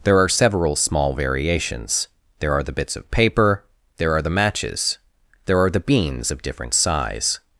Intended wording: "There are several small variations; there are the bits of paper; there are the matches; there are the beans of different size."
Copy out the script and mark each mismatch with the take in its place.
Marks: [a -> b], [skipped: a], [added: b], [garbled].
"There are several small variations; there are the bits of paper; there are the matches; there are the beans of different size."